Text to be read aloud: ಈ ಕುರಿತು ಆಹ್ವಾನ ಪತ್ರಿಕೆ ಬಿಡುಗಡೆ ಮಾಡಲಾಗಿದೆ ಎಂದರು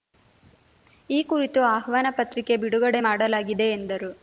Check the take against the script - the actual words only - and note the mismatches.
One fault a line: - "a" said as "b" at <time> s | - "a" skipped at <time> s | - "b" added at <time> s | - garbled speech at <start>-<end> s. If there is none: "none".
none